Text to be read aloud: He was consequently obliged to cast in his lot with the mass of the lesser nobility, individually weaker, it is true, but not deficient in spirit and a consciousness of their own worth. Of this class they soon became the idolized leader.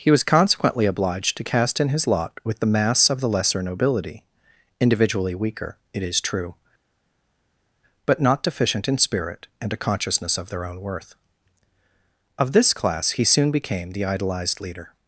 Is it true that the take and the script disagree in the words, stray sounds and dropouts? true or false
true